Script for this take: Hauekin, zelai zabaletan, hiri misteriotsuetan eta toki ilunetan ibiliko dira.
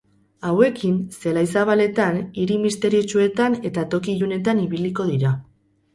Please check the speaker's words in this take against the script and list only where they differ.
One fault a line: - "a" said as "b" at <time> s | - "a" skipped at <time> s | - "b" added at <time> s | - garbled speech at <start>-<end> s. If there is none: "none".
none